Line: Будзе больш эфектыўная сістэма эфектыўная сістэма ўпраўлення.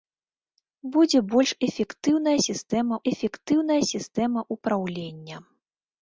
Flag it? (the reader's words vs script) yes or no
no